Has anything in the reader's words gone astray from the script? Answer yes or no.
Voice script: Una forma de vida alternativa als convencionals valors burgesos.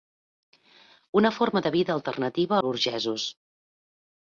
yes